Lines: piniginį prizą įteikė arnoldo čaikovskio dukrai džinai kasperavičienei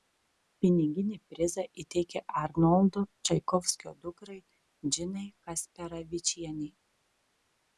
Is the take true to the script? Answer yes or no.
yes